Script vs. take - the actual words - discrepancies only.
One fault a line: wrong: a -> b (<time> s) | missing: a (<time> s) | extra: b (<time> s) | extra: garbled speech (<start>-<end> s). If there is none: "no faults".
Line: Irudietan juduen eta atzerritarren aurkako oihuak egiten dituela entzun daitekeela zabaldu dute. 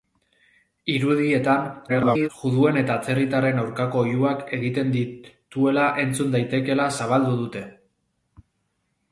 extra: garbled speech (1.9-2.3 s)